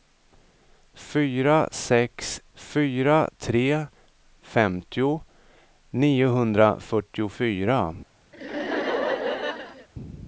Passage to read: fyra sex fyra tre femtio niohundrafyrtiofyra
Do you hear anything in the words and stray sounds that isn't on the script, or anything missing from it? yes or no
yes